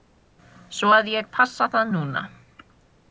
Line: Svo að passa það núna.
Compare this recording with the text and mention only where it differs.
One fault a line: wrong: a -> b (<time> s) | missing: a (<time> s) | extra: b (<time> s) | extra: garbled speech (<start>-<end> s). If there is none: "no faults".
extra: ég (1.1 s)